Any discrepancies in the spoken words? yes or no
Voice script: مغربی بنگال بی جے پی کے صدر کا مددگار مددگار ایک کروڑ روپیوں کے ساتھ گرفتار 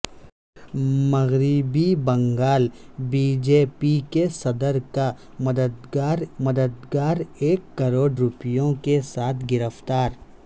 no